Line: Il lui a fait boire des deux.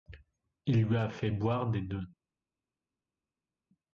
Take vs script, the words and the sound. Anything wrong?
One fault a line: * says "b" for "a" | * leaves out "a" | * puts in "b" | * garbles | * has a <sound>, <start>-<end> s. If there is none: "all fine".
all fine